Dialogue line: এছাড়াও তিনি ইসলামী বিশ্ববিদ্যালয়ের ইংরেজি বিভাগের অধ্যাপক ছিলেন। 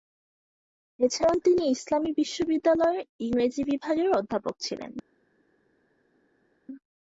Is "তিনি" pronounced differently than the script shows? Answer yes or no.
no